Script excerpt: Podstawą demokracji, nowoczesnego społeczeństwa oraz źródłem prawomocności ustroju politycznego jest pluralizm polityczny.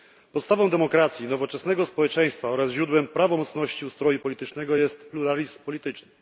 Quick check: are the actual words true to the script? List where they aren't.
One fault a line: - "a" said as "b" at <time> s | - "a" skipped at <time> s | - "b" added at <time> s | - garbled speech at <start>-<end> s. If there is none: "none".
none